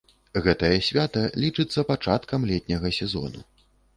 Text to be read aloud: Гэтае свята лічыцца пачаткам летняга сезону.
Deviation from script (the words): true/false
false